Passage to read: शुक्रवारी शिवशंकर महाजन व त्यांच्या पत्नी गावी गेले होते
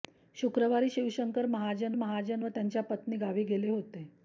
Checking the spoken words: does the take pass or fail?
fail